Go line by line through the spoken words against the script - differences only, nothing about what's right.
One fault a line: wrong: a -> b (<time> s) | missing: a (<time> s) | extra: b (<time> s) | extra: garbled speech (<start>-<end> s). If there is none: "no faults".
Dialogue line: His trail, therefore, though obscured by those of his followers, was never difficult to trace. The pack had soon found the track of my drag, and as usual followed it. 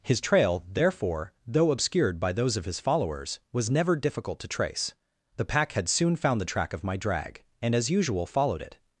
no faults